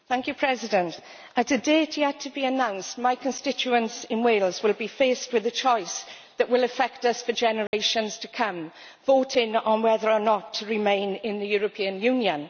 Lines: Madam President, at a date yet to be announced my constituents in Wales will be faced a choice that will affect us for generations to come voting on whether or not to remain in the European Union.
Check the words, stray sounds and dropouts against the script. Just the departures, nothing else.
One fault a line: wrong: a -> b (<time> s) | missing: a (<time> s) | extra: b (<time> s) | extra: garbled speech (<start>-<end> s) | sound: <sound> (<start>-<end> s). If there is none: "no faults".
extra: with (5.3 s)
sound: dropout (7.7-7.7 s)